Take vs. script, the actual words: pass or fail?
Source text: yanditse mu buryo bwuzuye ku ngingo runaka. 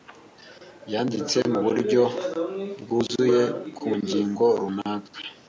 pass